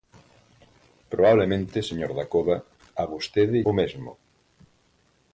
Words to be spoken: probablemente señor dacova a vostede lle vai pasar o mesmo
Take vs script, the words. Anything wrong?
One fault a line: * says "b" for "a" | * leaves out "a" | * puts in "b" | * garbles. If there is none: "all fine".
* leaves out "lle vai pasar"